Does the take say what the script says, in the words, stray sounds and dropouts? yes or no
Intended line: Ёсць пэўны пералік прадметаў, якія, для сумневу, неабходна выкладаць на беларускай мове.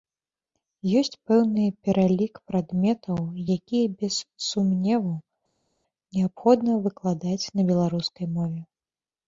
no